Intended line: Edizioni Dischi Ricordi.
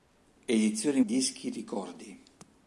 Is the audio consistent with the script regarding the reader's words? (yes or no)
yes